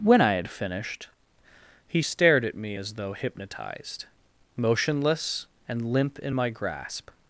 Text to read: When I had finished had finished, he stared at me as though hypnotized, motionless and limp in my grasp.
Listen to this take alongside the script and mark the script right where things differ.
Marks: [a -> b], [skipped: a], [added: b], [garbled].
When I had finished [skipped: had finished,] he stared at me as though hypnotized, motionless and limp in my grasp.